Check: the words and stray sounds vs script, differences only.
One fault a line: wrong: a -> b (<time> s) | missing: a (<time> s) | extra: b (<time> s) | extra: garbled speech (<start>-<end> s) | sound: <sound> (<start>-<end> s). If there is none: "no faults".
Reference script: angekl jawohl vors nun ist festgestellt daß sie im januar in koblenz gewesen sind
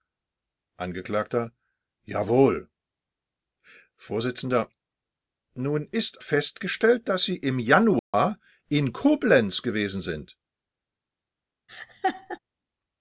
sound: dropout (8.0-8.1 s)
sound: laugh (11.7-12.4 s)